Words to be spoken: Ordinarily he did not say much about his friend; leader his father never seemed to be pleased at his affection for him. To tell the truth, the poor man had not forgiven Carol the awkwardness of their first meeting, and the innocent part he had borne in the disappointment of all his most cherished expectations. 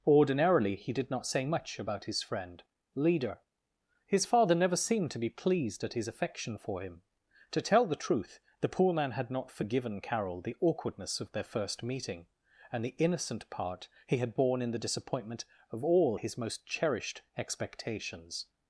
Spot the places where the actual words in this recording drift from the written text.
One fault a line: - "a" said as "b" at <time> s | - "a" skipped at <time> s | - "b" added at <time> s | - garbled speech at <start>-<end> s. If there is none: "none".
none